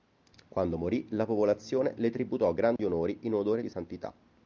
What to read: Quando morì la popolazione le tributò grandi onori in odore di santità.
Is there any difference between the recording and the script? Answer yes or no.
no